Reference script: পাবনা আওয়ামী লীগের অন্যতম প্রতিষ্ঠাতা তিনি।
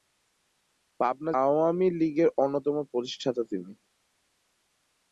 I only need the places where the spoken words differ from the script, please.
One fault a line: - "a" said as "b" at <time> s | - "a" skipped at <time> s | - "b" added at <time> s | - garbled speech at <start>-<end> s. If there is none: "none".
none